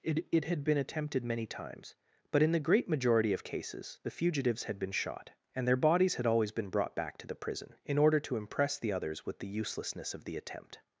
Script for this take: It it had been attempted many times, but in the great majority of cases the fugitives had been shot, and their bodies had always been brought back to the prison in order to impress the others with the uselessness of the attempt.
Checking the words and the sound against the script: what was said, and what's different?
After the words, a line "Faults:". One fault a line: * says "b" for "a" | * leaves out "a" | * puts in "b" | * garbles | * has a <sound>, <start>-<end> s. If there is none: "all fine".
It it had been attempted many times, but in the great majority of cases the fugitives had been shot, and their bodies had always been brought back to the prison in order to impress the others with the uselessness of the attempt.
Faults:
all fine